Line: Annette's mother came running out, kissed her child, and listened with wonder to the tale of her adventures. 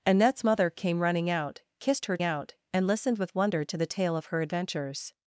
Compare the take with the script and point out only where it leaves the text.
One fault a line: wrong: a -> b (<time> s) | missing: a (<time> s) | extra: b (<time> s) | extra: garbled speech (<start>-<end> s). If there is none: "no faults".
wrong: child -> out (2.2 s)